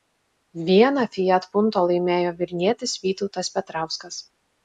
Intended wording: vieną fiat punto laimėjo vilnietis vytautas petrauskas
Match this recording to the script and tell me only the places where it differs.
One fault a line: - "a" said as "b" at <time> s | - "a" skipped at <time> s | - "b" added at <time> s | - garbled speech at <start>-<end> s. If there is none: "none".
none